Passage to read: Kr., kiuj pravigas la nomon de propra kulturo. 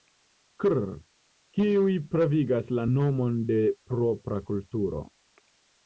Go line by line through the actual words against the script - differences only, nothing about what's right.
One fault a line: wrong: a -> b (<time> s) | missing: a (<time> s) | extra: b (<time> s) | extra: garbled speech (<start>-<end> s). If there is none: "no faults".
no faults